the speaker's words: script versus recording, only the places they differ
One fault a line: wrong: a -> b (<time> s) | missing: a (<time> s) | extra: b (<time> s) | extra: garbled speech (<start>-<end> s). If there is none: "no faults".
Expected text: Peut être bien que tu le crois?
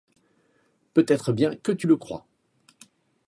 no faults